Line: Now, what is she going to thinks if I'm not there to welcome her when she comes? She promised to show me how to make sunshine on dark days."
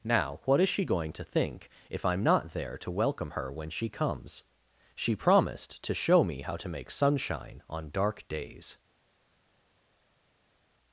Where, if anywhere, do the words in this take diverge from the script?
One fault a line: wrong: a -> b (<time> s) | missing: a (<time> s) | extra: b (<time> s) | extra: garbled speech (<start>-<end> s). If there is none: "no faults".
wrong: thinks -> think (1.2 s)